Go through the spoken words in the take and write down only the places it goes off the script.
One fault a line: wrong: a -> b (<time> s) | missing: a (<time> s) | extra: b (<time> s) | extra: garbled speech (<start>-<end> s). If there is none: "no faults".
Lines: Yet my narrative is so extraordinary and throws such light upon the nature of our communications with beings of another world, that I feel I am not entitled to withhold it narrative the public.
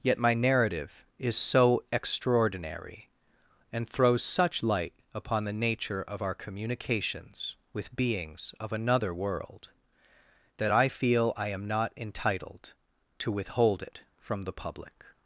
wrong: narrative -> from (14.2 s)